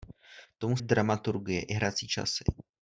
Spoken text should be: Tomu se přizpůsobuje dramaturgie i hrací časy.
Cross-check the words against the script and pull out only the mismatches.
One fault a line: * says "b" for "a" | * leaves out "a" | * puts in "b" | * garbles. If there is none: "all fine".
* leaves out "se přizpůsobuje"